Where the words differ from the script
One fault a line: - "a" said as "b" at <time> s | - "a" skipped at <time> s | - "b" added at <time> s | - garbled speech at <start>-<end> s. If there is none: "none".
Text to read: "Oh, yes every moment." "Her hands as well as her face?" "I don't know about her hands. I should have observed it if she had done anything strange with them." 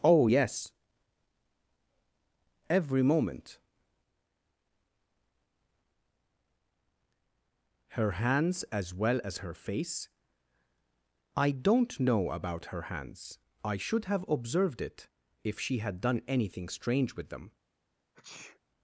none